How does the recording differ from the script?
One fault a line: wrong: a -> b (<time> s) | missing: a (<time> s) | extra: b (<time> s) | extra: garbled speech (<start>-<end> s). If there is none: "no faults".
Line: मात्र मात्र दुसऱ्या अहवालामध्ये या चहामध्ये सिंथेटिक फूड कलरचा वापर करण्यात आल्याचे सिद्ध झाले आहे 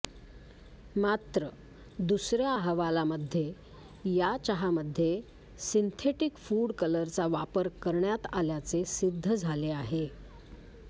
missing: मात्र (1.5 s)